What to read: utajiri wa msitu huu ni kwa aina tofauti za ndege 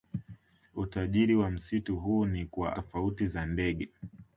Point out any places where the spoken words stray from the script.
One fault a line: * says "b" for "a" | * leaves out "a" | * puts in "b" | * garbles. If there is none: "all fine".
* leaves out "aina"